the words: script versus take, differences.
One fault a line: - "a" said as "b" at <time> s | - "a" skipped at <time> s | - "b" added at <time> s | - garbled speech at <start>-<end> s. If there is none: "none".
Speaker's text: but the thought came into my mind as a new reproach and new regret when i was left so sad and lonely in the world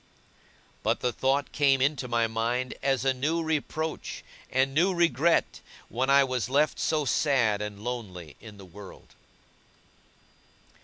none